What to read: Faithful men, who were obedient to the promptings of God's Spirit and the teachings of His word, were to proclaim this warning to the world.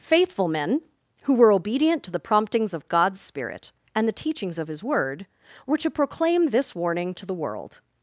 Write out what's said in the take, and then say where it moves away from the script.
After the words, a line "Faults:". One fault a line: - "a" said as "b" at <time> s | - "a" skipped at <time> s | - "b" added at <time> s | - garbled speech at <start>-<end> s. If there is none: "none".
Faithful men, who were obedient to the promptings of God's Spirit and the teachings of His word, were to proclaim this warning to the world.
Faults:
none